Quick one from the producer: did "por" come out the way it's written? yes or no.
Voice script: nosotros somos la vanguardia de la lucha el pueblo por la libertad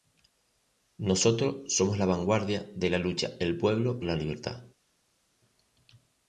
no